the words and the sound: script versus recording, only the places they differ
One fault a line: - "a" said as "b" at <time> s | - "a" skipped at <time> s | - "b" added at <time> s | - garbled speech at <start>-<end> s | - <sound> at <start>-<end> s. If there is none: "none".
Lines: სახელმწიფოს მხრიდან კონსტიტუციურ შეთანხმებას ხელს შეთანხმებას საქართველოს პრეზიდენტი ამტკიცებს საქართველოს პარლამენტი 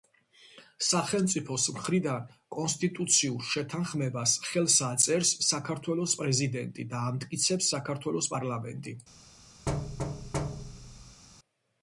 - "შეთანხმებას" said as "აწერს" at 4.9 s
- "და" added at 7.0 s
- thud at 9.7-11.2 s